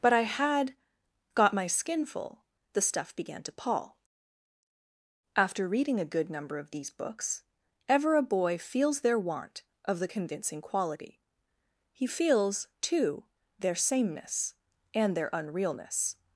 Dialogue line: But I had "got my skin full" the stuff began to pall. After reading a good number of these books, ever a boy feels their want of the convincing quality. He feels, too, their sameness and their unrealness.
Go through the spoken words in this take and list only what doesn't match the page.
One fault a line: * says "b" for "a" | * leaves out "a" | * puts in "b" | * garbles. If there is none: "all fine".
all fine